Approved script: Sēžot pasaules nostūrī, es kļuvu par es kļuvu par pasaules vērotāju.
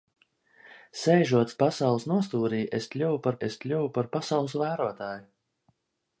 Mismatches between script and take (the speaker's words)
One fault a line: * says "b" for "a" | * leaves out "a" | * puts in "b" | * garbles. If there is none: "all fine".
all fine